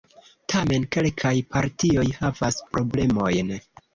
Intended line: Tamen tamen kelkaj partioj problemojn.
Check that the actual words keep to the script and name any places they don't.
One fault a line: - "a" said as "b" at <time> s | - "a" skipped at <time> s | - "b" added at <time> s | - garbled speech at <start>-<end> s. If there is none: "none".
- "tamen" skipped at 0.9 s
- "havas" added at 2.2 s